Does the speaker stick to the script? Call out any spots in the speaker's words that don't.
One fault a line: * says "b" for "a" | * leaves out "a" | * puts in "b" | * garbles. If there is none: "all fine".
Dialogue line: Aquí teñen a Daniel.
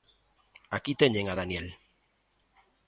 all fine